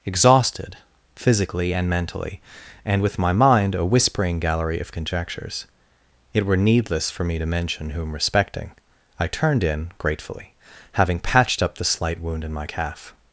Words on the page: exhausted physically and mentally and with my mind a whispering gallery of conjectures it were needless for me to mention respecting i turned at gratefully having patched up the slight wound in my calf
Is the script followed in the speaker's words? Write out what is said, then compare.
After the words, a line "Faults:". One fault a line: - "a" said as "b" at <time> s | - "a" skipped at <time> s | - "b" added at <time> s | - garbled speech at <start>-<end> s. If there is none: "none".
exhausted physically and mentally and with my mind a whispering gallery of conjectures it were needless for me to mention whom respecting i turned in gratefully having patched up the slight wound in my calf
Faults:
- "whom" added at 7.9 s
- "at" said as "in" at 9.6 s